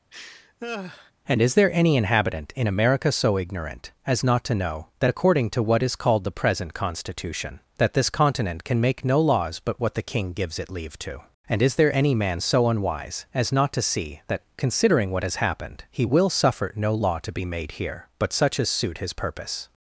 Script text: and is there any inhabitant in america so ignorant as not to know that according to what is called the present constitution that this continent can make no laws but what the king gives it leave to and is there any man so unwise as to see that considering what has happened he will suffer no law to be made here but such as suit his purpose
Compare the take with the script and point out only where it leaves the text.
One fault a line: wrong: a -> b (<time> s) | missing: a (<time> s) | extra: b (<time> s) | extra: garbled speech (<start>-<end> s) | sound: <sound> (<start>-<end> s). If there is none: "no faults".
sound: laugh (0.1-1.1 s)
extra: not (13.5 s)